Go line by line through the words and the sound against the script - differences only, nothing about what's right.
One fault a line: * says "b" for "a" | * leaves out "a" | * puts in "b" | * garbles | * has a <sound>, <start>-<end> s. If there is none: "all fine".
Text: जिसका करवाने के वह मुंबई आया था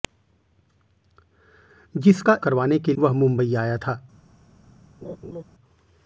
* has a laugh, 5.0-5.4 s